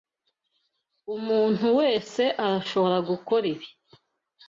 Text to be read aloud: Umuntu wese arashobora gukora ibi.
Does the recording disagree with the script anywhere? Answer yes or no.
no